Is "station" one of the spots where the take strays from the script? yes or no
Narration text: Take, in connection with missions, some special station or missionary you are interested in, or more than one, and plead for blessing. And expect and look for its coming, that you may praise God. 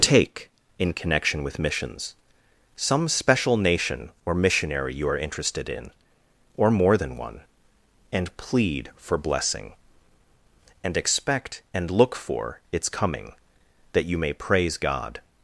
yes